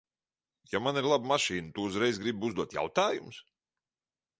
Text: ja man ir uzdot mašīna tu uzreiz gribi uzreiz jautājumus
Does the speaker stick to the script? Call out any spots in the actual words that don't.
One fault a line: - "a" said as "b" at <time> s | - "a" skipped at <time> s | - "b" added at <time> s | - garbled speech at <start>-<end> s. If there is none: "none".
- "uzdot" said as "laba" at 1.1 s
- "uzreiz" said as "uzdot" at 2.5 s